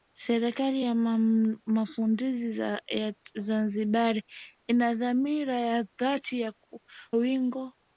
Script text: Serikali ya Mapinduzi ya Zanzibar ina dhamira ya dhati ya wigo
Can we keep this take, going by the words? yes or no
yes